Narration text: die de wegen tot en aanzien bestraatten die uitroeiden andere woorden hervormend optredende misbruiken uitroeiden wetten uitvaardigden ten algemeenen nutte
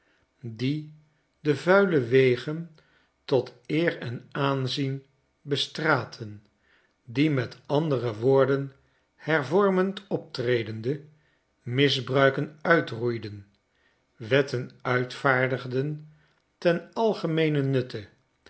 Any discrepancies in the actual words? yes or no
yes